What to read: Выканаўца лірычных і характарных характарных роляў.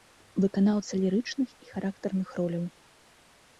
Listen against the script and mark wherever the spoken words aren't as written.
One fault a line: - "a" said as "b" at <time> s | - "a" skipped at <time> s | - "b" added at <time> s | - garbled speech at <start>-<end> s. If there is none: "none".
- "характарных" skipped at 2.3 s